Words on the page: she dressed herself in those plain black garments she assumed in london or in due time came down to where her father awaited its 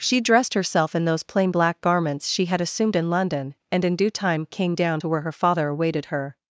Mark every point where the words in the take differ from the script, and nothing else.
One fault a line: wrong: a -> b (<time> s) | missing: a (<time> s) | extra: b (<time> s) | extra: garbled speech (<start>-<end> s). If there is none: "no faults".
extra: had (2.4 s)
wrong: or -> and (3.7 s)
wrong: its -> her (6.1 s)